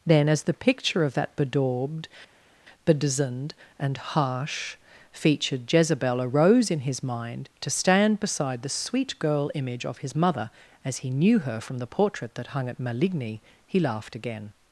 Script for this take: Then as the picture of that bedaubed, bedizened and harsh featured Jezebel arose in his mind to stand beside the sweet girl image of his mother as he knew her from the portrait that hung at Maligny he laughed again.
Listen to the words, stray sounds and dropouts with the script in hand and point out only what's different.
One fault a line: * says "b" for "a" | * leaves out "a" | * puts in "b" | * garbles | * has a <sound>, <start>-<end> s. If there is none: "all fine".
all fine